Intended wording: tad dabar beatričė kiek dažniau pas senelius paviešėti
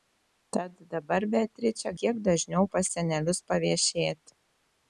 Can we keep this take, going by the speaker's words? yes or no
yes